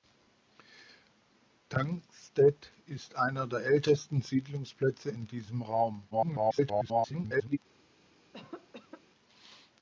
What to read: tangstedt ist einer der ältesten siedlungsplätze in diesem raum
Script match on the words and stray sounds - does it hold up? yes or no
no